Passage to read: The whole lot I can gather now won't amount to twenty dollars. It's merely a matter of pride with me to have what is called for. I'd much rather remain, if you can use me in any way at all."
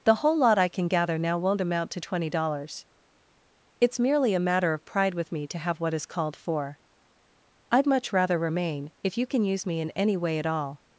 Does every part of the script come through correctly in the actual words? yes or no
yes